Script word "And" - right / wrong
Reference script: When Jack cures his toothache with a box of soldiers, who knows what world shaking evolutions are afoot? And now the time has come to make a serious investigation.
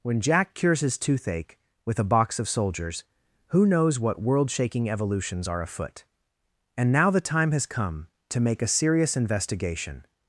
right